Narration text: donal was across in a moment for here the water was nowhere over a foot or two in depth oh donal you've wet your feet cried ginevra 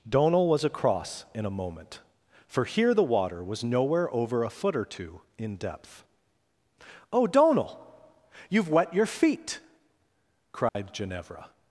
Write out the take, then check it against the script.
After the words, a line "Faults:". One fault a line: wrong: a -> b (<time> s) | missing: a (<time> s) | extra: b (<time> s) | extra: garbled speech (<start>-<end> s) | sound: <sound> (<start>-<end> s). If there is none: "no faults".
donal was across in a moment for here the water was nowhere over a foot or two in depth oh donal you've wet your feet cried ginevra
Faults:
sound: dropout (10.7-10.8 s)